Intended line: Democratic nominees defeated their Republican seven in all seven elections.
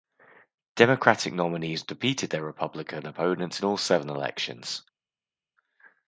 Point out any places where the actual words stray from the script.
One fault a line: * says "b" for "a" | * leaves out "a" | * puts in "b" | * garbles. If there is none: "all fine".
* says "opponents" for "seven"